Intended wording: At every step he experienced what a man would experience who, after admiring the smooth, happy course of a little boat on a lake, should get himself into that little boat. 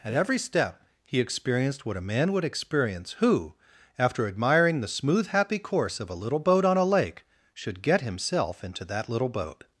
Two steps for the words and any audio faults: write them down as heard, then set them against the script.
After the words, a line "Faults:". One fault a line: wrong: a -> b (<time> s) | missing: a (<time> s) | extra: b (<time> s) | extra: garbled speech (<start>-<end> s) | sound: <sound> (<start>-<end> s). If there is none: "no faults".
At every step he experienced what a man would experience who, after admiring the smooth, happy course of a little boat on a lake, should get himself into that little boat.
Faults:
no faults